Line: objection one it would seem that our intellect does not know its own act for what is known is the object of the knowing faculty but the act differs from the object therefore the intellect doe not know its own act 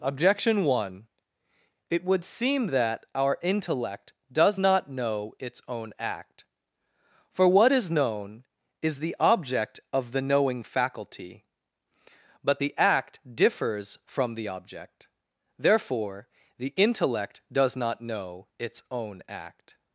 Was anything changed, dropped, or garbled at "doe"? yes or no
yes